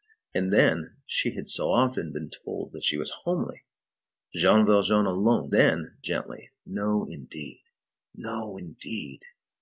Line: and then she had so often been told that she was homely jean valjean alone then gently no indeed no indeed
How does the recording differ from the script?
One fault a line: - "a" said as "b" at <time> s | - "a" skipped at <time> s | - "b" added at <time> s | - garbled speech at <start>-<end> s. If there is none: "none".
none